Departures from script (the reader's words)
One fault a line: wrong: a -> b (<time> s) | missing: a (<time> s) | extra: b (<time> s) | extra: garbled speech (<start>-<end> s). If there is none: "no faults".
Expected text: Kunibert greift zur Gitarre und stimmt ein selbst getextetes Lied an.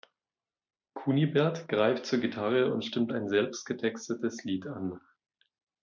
no faults